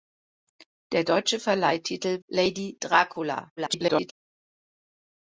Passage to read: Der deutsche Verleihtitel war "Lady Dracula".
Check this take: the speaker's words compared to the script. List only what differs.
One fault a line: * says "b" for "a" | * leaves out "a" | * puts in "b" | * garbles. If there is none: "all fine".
* leaves out "war"
* garbles